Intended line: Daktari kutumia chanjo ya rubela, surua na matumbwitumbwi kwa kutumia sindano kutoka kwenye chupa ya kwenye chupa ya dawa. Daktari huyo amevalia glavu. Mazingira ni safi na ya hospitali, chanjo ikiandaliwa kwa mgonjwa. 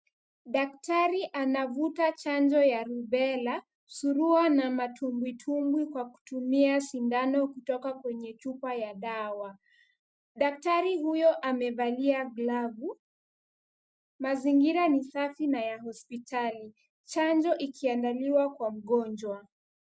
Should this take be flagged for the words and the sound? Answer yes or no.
yes